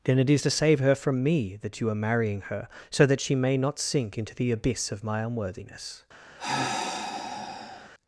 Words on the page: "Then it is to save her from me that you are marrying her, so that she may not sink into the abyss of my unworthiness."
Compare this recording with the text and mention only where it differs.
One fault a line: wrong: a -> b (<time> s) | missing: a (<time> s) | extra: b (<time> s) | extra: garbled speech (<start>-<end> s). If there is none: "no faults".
no faults